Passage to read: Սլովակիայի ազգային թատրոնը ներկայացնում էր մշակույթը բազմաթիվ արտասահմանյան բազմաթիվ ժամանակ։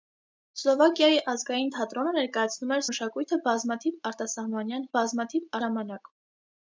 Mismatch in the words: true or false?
false